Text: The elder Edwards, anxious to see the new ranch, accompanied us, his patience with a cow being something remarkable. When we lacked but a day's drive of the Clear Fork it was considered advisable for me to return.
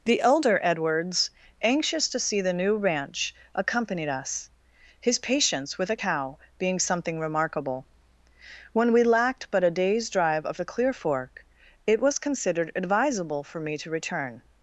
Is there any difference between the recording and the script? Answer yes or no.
no